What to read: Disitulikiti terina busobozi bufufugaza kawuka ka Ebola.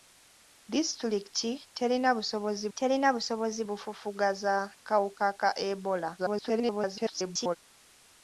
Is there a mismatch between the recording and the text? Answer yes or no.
yes